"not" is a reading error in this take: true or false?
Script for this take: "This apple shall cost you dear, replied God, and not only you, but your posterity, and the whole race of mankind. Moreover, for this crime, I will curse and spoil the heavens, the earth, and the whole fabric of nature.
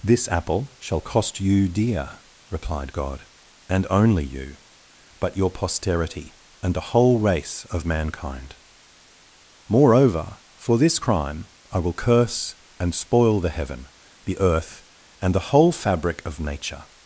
true